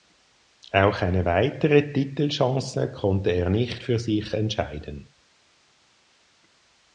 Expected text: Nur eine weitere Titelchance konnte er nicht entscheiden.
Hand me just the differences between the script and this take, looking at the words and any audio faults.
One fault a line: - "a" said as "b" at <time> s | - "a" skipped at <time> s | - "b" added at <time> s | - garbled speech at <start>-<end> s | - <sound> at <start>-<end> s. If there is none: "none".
- "Nur" said as "Auch" at 0.7 s
- "für sich" added at 3.8 s